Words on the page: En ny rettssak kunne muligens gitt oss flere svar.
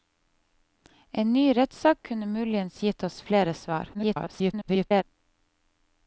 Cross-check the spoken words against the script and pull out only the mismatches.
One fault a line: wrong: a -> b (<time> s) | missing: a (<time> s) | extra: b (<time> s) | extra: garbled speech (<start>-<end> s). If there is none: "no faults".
extra: garbled speech (3.9-5.0 s)